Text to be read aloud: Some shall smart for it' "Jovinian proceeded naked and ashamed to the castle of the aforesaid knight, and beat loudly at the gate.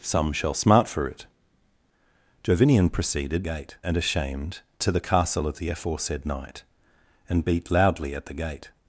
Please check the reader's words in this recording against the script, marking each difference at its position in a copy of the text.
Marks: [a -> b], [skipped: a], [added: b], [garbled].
Some shall smart for it' "Jovinian proceeded [naked -> gate] and ashamed to the castle of the aforesaid knight, and beat loudly at the gate.